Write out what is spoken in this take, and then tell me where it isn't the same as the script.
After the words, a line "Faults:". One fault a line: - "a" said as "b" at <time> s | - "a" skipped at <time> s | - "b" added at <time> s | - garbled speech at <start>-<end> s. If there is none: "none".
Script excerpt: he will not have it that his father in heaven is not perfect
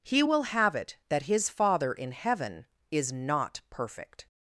he will have it that his father in heaven is not perfect
Faults:
- "not" skipped at 0.4 s